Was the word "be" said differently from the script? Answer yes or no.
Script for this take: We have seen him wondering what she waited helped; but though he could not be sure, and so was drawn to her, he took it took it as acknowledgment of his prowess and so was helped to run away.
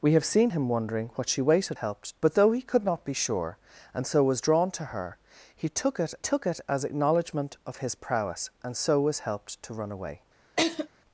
no